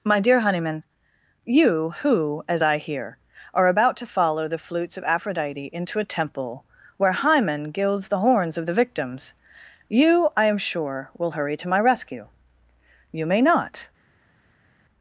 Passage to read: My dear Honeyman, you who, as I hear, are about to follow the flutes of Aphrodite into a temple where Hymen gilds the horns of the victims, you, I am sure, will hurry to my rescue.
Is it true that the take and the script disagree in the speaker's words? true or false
true